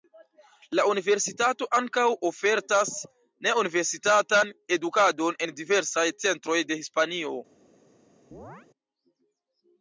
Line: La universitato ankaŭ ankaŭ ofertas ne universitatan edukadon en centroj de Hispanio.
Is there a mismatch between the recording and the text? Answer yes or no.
yes